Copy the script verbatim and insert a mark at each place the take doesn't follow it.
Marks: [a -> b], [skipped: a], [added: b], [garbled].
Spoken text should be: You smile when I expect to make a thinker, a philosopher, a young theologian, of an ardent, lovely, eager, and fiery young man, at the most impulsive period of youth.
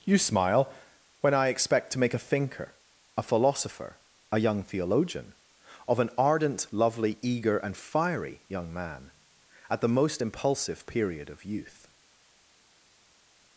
You smile when I expect to make a thinker, a philosopher, a young theologian, of an ardent, lovely, eager, and fiery young man, at the most impulsive period of youth.